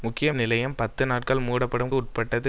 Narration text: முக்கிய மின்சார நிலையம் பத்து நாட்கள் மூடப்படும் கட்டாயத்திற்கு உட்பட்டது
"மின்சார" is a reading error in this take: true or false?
true